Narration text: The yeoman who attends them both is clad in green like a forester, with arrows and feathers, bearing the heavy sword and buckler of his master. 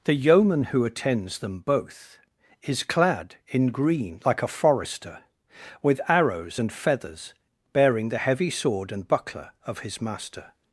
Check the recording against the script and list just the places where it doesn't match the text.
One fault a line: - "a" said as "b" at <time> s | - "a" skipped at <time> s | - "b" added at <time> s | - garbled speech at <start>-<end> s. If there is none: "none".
none